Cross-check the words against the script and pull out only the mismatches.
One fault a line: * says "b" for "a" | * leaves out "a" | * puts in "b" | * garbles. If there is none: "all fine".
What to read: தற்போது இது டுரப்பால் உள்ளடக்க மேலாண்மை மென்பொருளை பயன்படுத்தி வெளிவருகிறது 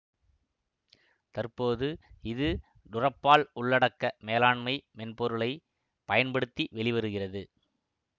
all fine